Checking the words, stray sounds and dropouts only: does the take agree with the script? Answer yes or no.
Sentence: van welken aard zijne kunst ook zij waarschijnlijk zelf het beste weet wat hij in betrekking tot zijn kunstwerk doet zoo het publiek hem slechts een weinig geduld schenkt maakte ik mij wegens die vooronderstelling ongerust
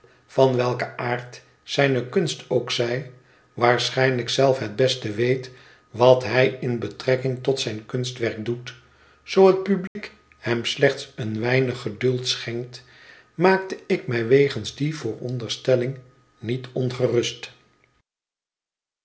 no